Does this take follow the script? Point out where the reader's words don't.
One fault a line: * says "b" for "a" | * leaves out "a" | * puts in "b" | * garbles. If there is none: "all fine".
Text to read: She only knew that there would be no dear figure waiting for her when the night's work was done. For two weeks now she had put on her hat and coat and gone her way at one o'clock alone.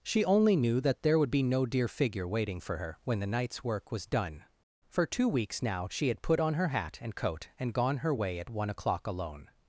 all fine